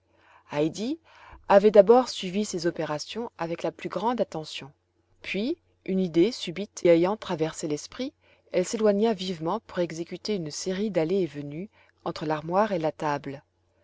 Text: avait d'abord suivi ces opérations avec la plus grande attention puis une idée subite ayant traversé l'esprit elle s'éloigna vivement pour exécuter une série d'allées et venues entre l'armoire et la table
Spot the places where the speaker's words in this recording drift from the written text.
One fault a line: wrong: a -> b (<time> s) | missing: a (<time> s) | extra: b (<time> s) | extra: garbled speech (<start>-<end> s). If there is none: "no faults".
no faults